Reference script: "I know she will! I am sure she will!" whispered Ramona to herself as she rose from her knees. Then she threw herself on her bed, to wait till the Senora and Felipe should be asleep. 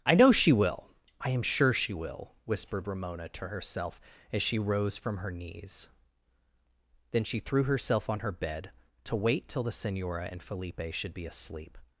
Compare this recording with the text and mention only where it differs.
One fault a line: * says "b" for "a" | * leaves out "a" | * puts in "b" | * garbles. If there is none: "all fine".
all fine